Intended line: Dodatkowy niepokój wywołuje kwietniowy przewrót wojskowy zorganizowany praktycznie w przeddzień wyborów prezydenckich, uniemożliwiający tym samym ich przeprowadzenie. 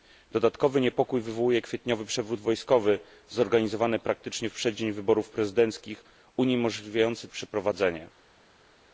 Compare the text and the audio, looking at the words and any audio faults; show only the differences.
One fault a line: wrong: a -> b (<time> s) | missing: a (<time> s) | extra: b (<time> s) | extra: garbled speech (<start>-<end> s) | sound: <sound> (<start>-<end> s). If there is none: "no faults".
missing: tym samym ich (7.3 s)